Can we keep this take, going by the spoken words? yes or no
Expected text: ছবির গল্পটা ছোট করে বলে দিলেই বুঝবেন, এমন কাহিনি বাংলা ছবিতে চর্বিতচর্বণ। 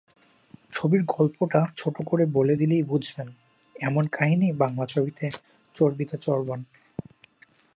yes